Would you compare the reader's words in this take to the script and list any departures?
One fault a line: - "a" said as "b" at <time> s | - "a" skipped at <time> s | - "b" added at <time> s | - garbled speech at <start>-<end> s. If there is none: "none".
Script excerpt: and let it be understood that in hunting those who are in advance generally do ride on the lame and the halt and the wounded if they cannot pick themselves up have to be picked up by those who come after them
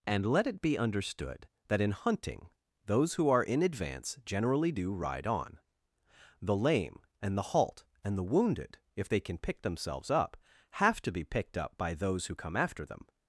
- "cannot" said as "can" at 9.2 s